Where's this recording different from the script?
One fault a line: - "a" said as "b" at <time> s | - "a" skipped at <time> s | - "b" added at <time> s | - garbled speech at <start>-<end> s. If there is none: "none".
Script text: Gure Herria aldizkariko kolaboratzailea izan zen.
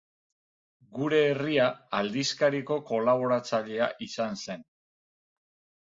none